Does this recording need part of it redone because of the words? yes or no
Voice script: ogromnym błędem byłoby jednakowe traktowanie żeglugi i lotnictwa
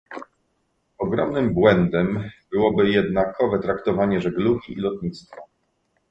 no